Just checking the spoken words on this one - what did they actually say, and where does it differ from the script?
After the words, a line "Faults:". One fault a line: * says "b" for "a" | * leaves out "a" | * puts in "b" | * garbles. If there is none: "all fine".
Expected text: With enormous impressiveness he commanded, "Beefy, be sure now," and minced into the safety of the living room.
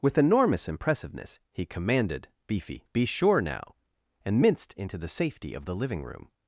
With enormous impressiveness he commanded, "Beefy, be sure now," and minced into the safety of the living room.
Faults:
all fine